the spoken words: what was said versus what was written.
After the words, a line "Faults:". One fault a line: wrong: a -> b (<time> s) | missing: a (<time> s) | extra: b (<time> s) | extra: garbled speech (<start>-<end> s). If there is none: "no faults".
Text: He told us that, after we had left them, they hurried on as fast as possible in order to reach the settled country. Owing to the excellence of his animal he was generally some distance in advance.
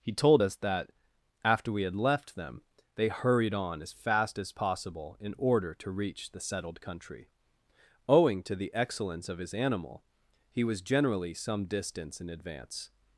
He told us that, after we had left them, they hurried on as fast as possible in order to reach the settled country. Owing to the excellence of his animal he was generally some distance in advance.
Faults:
no faults